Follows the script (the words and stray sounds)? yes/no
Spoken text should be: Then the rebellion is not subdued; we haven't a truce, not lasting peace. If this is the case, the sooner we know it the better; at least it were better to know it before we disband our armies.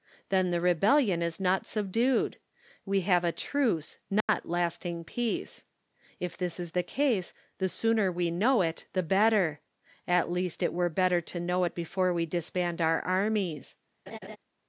no